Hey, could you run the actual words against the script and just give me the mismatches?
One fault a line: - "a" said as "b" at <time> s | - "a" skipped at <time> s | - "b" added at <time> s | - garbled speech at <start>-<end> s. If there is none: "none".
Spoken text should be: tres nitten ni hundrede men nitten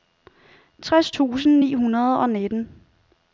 - "nitten" said as "tusind" at 1.1 s
- "men" said as "og" at 2.2 s